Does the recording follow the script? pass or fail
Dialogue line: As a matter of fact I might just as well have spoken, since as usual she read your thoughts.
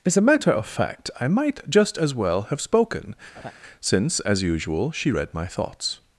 fail